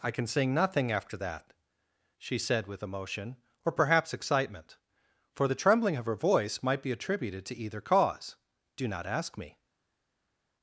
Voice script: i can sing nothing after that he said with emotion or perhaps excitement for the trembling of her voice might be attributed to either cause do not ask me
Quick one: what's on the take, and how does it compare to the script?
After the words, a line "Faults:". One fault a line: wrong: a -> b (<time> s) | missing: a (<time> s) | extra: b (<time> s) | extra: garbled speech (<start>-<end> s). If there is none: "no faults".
i can sing nothing after that she said with emotion or perhaps excitement for the trembling of her voice might be attributed to either cause do not ask me
Faults:
wrong: he -> she (2.2 s)